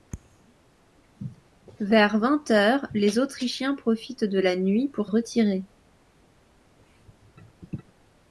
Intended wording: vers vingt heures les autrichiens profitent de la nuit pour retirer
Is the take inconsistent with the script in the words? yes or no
no